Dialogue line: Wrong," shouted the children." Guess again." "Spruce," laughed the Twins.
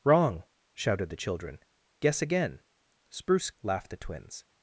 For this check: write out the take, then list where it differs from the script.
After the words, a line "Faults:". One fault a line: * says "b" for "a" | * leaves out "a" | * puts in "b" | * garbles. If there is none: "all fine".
Wrong," shouted the children." Guess again." "Spruce," laughed the Twins.
Faults:
all fine